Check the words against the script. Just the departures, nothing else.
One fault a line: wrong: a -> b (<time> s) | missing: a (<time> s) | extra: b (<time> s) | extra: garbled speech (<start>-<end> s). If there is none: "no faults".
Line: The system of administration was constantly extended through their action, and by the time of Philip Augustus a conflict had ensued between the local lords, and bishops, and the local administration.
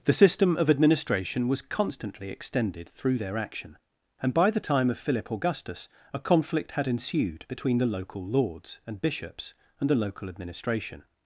no faults